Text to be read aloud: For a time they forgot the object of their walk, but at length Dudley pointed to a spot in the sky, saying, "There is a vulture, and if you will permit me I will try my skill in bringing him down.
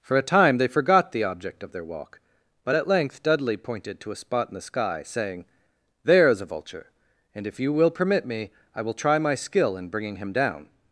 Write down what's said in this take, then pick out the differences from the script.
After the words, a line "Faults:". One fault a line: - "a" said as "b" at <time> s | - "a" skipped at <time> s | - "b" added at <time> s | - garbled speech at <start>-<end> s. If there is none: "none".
For a time they forgot the object of their walk, but at length Dudley pointed to a spot in the sky, saying, "There is a vulture, and if you will permit me I will try my skill in bringing him down.
Faults:
none